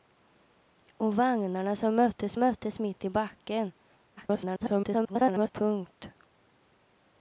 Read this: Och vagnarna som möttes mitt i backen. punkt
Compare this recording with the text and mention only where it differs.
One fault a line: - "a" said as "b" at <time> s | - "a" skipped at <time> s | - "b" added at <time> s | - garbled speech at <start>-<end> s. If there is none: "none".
- "möttes" added at 2.4 s
- garbled speech at 4.2-5.5 s